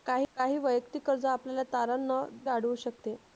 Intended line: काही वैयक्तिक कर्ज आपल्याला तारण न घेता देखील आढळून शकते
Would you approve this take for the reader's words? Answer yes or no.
no